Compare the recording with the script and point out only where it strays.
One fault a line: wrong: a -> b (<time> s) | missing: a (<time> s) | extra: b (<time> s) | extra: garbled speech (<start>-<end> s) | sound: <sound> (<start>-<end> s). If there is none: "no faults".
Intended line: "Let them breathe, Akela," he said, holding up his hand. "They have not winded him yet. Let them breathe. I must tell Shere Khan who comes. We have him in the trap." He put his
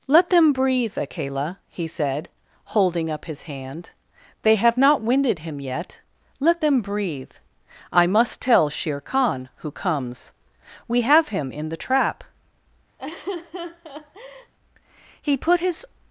sound: laugh (13.0-14.5 s)